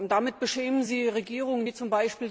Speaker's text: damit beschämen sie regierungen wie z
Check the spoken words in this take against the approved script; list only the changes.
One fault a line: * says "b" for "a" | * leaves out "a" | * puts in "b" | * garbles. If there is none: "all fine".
all fine